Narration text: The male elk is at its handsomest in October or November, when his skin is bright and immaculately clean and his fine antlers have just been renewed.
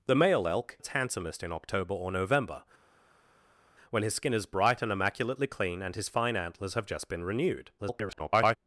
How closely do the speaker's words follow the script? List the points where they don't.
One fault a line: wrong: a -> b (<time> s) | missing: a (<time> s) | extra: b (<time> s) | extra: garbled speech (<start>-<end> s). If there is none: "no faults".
missing: is at (0.8 s)
extra: garbled speech (7.8-8.6 s)